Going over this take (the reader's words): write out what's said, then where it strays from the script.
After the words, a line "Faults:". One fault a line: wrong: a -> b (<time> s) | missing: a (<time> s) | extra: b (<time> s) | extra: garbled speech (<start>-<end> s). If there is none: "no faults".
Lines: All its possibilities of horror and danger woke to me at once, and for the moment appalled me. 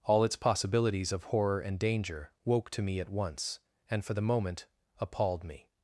All its possibilities of horror and danger woke to me at once, and for the moment appalled me.
Faults:
no faults